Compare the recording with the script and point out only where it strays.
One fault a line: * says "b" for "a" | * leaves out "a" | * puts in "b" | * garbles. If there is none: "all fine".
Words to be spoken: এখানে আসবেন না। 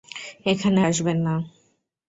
all fine